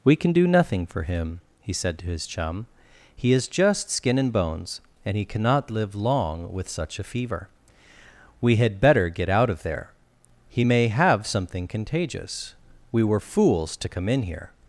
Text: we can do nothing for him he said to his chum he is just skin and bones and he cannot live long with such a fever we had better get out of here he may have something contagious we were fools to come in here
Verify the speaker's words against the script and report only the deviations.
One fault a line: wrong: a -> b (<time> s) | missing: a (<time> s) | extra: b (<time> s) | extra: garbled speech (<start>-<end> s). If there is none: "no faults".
wrong: here -> there (9.6 s)